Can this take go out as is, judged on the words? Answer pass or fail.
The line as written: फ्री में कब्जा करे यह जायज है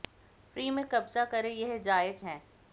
pass